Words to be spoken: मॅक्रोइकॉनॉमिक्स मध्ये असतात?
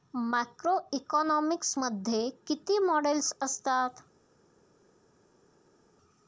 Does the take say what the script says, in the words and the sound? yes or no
no